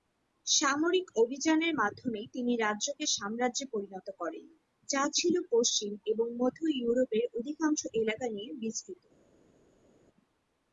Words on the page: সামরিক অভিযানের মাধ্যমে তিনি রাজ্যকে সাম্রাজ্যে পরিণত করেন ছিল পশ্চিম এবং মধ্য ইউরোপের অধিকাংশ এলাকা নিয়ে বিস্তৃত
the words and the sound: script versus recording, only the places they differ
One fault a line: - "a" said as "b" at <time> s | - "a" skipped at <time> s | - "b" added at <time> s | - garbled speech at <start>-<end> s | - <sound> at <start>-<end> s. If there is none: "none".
- "যা" added at 4.9 s